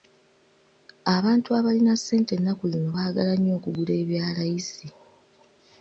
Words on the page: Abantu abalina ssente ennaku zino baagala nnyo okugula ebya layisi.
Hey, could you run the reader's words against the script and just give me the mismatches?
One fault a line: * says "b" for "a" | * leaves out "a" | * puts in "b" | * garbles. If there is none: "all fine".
all fine